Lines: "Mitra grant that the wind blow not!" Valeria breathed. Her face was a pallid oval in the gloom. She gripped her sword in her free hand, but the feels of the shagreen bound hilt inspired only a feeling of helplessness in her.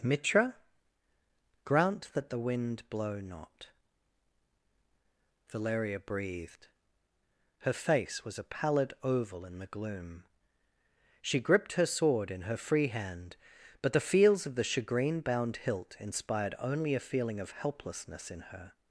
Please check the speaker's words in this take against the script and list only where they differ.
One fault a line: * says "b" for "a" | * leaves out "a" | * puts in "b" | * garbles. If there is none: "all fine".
all fine